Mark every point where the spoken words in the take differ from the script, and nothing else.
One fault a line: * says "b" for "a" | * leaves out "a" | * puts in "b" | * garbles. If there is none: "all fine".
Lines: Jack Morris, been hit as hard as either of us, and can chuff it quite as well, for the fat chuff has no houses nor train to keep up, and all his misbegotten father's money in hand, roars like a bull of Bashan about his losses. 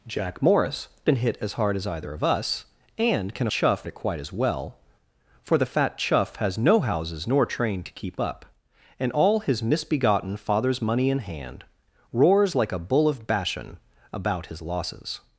all fine